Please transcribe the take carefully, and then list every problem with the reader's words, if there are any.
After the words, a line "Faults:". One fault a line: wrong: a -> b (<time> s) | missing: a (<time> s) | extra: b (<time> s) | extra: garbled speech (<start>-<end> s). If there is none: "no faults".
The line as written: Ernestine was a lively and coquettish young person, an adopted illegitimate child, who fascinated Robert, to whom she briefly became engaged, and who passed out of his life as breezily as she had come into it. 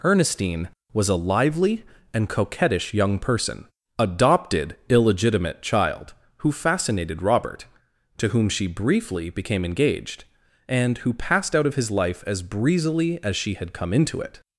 Ernestine was a lively and coquettish young person, adopted illegitimate child, who fascinated Robert, to whom she briefly became engaged, and who passed out of his life as breezily as she had come into it.
Faults:
missing: an (3.7 s)